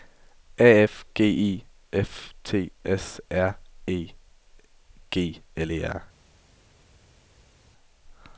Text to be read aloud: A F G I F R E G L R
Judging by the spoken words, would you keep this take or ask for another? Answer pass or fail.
fail